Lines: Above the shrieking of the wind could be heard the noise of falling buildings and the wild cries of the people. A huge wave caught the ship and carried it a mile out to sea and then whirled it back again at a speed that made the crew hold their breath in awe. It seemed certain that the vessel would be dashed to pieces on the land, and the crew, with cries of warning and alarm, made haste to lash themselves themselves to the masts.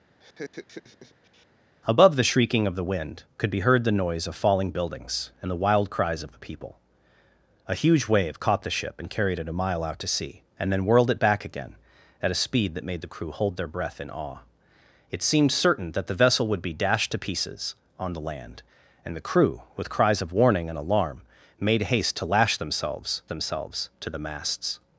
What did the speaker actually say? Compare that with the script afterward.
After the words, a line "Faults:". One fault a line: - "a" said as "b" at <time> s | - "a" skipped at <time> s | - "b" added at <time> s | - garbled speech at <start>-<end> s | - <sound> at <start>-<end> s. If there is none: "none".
Above the shrieking of the wind could be heard the noise of falling buildings and the wild cries of the people. A huge wave caught the ship and carried it a mile out to sea and then whirled it back again at a speed that made the crew hold their breath in awe. It seemed certain that the vessel would be dashed to pieces on the land, and the crew, with cries of warning and alarm, made haste to lash themselves themselves to the masts.
Faults:
- laugh at 0.2-1.5 s